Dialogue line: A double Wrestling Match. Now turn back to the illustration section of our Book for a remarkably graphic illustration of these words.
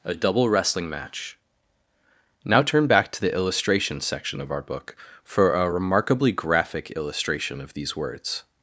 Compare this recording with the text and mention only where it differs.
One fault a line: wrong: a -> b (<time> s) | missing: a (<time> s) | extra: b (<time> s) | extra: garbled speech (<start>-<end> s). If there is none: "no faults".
no faults